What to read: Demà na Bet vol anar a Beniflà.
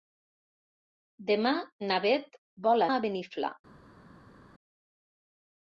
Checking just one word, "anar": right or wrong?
wrong